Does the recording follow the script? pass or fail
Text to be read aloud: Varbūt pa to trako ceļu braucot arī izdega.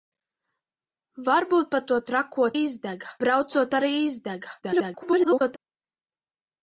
fail